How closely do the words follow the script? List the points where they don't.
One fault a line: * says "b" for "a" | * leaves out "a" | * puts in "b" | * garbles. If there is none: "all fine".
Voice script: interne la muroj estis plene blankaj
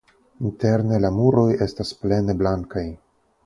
* says "estas" for "estis"